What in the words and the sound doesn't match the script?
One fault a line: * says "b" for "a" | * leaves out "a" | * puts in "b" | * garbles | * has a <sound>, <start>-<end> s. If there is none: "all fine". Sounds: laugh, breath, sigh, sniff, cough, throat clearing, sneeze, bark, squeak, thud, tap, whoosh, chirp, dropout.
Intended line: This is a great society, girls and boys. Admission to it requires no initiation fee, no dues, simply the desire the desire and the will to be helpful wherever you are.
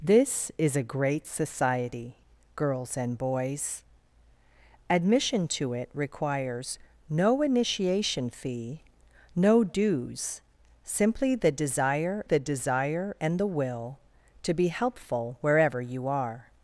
all fine